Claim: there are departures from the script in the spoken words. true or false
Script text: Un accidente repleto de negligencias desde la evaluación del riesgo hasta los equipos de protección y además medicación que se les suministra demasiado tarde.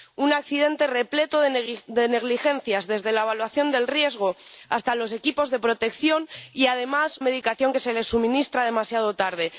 false